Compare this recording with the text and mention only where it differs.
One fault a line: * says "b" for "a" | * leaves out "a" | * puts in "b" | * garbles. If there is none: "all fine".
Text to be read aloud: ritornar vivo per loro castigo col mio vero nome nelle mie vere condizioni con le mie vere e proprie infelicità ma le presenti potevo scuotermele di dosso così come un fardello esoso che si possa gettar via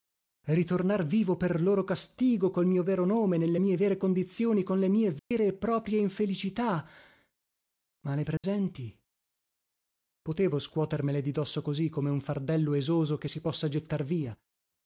all fine